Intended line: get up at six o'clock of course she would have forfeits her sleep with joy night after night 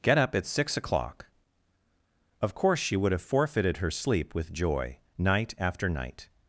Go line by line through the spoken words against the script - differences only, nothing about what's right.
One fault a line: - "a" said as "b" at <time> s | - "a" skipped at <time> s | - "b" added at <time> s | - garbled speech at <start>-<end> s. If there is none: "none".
- "forfeits" said as "forfeited" at 3.2 s